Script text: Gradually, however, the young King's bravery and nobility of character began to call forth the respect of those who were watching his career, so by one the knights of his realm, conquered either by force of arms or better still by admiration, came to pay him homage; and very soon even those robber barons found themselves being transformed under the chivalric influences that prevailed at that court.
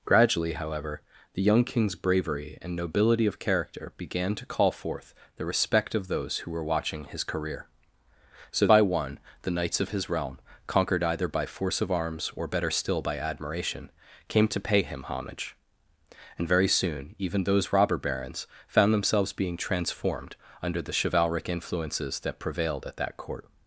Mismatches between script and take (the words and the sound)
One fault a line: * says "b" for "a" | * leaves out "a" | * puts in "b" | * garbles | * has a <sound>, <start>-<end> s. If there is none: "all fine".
all fine